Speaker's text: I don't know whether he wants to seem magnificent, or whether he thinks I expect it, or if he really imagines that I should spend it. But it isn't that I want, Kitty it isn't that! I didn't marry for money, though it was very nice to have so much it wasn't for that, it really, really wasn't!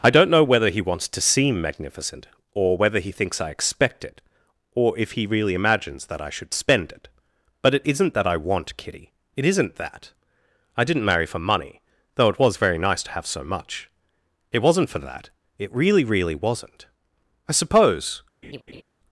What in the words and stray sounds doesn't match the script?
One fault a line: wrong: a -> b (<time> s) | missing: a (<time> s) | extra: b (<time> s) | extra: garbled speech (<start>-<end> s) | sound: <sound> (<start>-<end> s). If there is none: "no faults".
extra: I suppose (17.5 s)
sound: laugh (18.4-18.8 s)